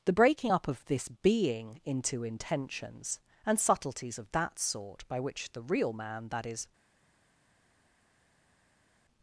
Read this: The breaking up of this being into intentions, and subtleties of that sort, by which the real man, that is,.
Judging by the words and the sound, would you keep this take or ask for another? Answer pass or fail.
pass